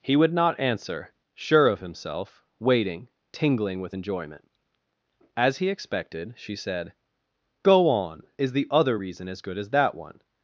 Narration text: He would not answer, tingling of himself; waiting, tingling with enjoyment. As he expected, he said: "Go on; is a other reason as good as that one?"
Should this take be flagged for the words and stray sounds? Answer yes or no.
yes